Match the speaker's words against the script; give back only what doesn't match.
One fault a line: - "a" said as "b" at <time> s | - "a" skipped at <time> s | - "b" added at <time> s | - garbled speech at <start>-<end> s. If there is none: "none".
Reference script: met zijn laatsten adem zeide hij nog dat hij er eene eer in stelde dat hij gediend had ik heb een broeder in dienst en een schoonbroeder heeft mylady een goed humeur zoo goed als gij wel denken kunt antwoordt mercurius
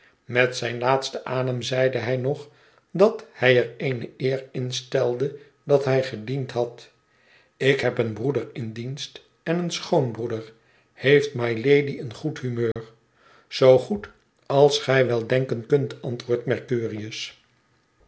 none